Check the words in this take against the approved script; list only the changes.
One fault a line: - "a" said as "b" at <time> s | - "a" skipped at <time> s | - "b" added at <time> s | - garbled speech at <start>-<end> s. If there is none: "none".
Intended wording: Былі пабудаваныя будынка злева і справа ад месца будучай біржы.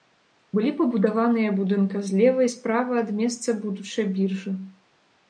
none